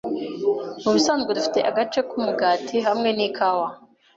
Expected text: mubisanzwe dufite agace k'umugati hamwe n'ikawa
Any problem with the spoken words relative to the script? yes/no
no